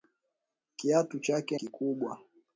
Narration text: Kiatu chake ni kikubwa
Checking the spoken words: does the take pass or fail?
fail